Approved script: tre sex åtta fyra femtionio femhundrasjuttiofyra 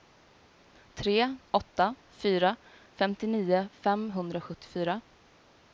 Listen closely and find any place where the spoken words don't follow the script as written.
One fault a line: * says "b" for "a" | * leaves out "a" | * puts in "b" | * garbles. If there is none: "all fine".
* leaves out "sex"